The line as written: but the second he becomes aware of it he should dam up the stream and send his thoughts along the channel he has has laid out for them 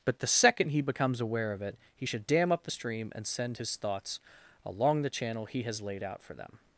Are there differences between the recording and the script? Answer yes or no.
yes